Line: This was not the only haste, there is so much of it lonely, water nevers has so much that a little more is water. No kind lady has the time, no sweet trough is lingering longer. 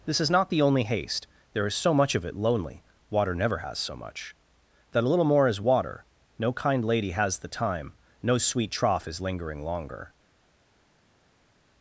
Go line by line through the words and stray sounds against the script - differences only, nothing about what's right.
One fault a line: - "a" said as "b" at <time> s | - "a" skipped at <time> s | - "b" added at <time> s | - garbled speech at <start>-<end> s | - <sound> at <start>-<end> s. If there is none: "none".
- "was" said as "is" at 0.2 s
- "nevers" said as "never" at 3.4 s